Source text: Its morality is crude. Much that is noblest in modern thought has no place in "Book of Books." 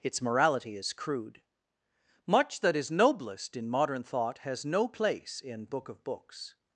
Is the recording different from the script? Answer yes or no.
no